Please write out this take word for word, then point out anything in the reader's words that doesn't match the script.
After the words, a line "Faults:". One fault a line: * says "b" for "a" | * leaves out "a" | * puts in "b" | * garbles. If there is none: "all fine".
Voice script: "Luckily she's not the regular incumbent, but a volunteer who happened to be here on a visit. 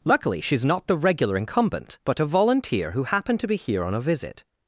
"Luckily she's not the regular incumbent, but a volunteer who happened to be here on a visit.
Faults:
all fine